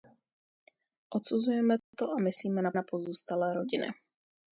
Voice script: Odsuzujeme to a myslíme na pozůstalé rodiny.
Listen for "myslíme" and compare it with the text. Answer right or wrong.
right